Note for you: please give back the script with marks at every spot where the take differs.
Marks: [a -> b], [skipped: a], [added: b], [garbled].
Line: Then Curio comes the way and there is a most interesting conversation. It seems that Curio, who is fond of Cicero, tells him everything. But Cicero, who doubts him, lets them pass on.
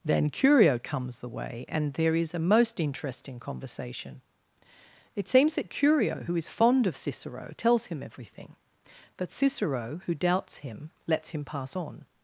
Then Curio comes the way and there is a most interesting conversation. It seems that Curio, who is fond of Cicero, tells him everything. But Cicero, who doubts him, lets [them -> him] pass on.